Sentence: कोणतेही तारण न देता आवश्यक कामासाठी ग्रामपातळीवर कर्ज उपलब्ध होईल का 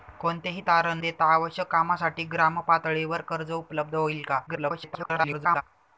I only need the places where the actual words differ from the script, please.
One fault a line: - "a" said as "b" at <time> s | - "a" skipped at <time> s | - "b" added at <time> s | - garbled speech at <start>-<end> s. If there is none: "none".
- "न" skipped at 1.0 s
- garbled speech at 4.5-5.6 s